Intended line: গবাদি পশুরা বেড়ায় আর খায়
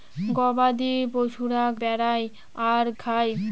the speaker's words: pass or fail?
pass